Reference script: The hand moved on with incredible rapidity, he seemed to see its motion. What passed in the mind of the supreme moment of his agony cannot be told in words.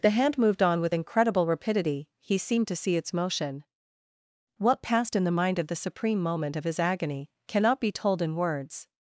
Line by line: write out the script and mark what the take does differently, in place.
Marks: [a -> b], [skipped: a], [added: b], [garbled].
The hand moved on with incredible rapidity, he seemed to see its motion. What passed in the mind of the supreme moment of his agony cannot be told in words.